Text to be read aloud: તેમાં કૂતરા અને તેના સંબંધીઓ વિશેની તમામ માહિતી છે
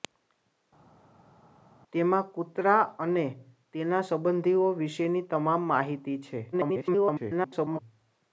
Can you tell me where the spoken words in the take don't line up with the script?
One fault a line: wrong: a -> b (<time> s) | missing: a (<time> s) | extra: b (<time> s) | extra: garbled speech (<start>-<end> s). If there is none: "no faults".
extra: garbled speech (6.5-7.8 s)